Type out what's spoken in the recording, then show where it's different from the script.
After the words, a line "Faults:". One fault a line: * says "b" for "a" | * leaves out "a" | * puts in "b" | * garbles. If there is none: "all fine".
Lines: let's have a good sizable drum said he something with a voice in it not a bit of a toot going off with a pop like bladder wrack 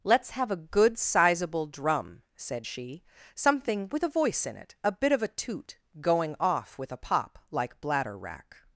let's have a good sizable drum said she something with a voice in it a bit of a toot going off with a pop like bladder wrack
Faults:
* says "she" for "he"
* leaves out "not"